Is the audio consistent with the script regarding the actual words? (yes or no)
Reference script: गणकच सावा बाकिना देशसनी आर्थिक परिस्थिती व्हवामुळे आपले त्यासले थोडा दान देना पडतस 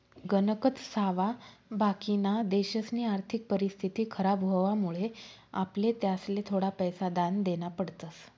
no